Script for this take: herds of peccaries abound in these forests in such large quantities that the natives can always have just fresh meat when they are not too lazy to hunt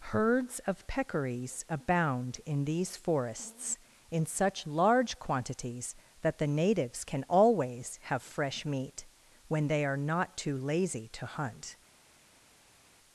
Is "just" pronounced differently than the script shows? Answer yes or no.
yes